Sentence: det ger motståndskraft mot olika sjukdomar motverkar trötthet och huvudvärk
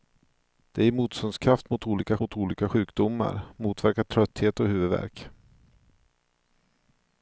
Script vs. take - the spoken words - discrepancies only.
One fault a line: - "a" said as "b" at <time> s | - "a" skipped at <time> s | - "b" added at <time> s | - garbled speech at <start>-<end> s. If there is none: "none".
- "mot olika" added at 2.2 s